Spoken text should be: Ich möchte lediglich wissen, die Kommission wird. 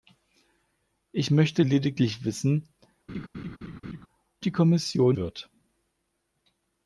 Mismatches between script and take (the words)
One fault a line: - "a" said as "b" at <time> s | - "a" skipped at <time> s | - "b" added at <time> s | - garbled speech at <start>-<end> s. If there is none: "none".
none